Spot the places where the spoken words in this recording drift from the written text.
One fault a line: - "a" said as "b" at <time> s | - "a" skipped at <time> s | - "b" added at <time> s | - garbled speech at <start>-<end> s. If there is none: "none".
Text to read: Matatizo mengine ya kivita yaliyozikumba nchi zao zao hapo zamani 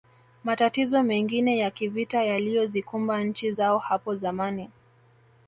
- "zao" skipped at 3.8 s